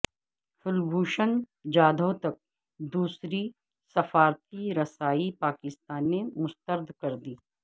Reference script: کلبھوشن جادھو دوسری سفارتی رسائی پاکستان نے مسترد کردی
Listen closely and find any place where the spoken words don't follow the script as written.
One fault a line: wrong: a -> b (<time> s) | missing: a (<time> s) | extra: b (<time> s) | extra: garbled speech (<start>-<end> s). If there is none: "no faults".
extra: تک (2.2 s)